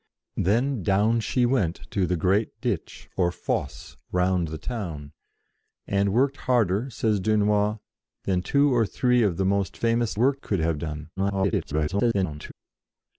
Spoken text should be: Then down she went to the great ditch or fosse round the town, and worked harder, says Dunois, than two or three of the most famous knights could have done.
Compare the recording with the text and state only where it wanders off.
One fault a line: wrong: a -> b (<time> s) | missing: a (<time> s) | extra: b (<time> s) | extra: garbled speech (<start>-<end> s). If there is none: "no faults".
wrong: knights -> worked (10.2 s)
extra: garbled speech (11.2-12.5 s)